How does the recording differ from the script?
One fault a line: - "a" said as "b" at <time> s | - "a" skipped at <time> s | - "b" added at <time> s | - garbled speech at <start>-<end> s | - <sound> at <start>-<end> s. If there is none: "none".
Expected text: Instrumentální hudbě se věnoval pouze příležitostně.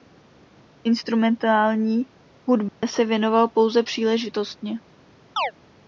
- dropout at 2.7-2.8 s
- chirp at 5.4-5.5 s